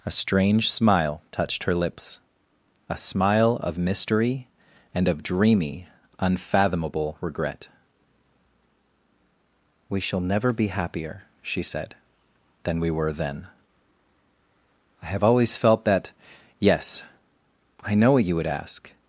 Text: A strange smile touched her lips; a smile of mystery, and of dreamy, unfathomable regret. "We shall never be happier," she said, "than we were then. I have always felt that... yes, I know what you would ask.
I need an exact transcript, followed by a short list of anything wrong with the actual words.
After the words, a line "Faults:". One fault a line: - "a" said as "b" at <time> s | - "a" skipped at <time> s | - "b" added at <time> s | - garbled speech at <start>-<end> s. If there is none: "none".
A strange smile touched her lips; a smile of mystery, and of dreamy, unfathomable regret. "We shall never be happier," she said, "than we were then. I have always felt that... yes, I know what you would ask.
Faults:
none